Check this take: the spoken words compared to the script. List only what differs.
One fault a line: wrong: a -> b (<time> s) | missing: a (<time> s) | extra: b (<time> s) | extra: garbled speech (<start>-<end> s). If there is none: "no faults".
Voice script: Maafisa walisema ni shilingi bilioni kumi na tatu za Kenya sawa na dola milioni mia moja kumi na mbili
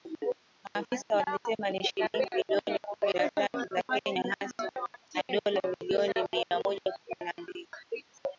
no faults